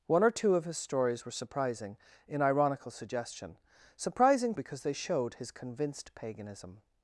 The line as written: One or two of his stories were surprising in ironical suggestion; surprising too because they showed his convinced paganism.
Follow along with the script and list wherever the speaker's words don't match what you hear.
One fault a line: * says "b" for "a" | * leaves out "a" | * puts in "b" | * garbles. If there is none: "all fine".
* leaves out "too"